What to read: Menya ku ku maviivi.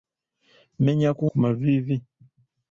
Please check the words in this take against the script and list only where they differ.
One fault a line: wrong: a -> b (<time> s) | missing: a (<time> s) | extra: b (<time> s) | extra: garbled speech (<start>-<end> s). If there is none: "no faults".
no faults